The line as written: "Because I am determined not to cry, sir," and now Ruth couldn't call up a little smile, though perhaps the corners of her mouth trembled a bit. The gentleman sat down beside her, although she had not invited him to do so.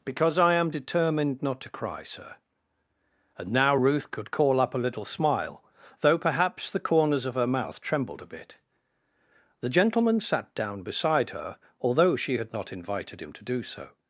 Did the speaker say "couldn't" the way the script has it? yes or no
no